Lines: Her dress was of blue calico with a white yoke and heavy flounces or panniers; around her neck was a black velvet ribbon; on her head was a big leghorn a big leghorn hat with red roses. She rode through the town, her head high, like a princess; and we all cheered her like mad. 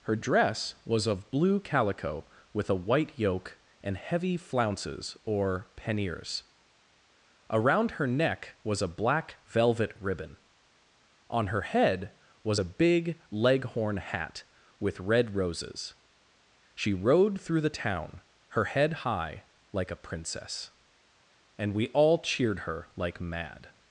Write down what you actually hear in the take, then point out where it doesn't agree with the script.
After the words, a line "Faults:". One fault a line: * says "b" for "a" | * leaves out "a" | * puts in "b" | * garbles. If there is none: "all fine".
Her dress was of blue calico with a white yoke and heavy flounces or panniers; around her neck was a black velvet ribbon; on her head was a big leghorn hat with red roses. She rode through the town, her head high, like a princess; and we all cheered her like mad.
Faults:
* leaves out "a big leghorn"